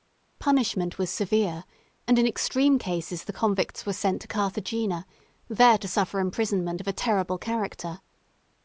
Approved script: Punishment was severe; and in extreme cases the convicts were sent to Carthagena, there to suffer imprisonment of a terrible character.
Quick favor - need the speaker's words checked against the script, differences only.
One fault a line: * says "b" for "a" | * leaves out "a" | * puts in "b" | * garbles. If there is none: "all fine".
all fine